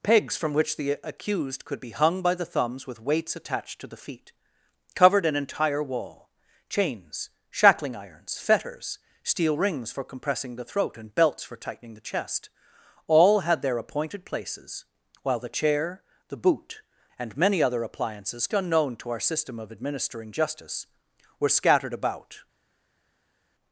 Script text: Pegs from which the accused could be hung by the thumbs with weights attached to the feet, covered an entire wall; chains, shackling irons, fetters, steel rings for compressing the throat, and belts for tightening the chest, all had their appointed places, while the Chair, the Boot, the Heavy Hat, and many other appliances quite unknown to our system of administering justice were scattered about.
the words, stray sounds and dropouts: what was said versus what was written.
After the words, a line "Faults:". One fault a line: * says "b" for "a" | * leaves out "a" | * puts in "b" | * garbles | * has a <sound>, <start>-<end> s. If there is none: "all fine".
Pegs from which the accused could be hung by the thumbs with weights attached to the feet, covered an entire wall; chains, shackling irons, fetters, steel rings for compressing the throat, and belts for tightening the chest, all had their appointed places, while the Chair, the Boot, and many other appliances unknown to our system of administering justice were scattered about.
Faults:
* leaves out "the Heavy Hat"
* leaves out "quite"